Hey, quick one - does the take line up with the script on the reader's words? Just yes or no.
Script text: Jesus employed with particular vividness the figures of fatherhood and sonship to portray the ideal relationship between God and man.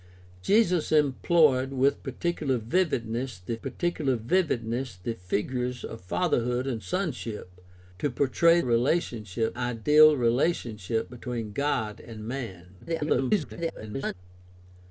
no